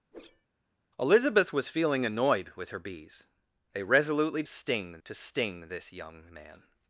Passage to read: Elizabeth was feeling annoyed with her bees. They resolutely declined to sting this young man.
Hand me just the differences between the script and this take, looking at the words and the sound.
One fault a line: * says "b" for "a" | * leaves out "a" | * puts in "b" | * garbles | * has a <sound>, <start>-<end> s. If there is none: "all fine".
* has a whoosh, 0.1-0.5 s
* says "sting" for "declined"